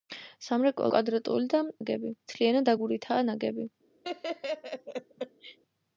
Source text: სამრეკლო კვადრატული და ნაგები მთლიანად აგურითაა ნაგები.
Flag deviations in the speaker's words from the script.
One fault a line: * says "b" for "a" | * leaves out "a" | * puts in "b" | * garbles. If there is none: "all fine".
all fine